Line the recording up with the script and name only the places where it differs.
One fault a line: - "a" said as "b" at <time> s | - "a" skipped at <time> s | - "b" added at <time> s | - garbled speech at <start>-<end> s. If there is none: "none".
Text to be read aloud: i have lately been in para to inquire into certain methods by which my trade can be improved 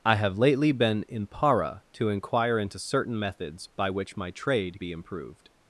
- "can" skipped at 4.8 s